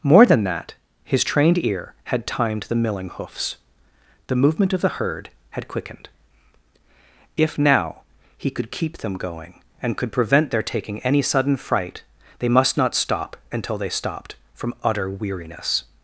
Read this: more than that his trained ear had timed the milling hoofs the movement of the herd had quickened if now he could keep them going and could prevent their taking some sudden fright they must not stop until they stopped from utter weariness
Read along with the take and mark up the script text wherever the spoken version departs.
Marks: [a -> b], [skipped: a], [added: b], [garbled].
more than that his trained ear had timed the milling hoofs the movement of the herd had quickened if now he could keep them going and could prevent their taking [some -> any] sudden fright they must not stop until they stopped from utter weariness